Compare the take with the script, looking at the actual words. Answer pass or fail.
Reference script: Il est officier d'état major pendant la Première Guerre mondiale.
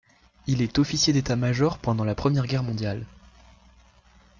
pass